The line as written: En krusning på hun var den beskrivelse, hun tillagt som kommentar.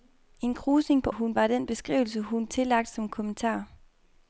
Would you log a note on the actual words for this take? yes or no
no